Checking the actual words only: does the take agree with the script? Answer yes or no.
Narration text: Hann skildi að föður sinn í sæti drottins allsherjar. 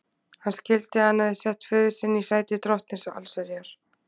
no